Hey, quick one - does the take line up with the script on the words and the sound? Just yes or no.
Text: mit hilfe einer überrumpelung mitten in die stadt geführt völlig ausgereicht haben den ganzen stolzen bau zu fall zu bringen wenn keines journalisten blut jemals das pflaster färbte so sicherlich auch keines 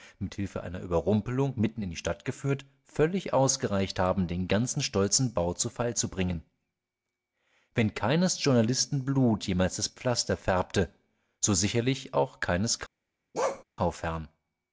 no